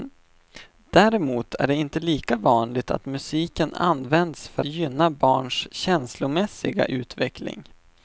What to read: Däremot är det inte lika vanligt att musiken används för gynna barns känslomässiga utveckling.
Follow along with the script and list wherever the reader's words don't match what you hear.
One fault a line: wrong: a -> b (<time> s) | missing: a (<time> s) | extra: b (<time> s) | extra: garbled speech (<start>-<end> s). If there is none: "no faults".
no faults